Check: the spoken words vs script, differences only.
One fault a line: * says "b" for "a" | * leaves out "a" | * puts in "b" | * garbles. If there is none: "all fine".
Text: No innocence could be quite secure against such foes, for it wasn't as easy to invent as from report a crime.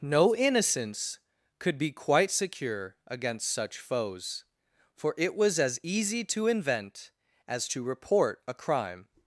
* says "was" for "wasn't"
* says "to" for "from"